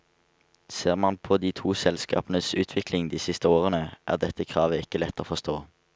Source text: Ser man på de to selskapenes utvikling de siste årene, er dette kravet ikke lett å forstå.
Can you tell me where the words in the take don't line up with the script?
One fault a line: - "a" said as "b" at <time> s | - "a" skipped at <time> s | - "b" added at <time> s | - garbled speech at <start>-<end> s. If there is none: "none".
none